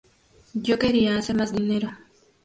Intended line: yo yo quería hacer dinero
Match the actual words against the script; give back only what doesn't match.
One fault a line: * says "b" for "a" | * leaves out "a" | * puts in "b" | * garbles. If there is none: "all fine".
* leaves out "yo"
* puts in "más"